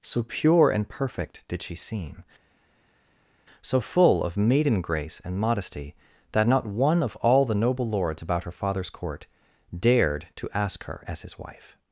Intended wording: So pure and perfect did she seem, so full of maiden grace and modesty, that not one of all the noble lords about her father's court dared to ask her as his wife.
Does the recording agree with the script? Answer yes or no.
yes